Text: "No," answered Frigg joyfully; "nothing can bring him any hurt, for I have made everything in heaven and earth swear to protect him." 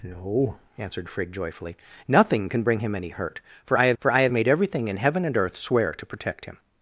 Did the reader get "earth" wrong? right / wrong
right